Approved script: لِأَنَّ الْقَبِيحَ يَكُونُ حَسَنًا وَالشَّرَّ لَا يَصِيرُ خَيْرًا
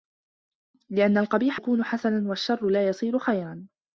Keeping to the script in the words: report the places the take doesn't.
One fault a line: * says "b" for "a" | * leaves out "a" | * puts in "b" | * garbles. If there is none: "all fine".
all fine